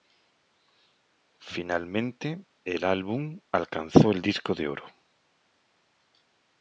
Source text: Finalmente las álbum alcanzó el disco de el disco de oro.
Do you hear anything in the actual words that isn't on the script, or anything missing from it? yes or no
yes